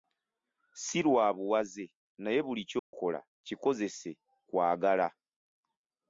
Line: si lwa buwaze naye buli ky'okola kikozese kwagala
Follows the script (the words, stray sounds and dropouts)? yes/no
no